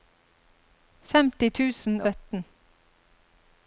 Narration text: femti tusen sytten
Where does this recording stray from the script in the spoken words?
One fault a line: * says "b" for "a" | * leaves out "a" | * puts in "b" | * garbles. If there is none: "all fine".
all fine